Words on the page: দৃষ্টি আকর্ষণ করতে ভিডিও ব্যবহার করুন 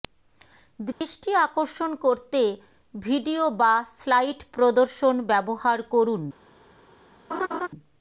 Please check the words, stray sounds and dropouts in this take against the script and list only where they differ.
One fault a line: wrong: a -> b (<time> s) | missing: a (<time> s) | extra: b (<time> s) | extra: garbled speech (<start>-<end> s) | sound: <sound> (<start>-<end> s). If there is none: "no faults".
sound: dropout (0.9-1.0 s)
extra: বা স্লাইড প্রদর্শন (3.6 s)
sound: laugh (7.3-7.7 s)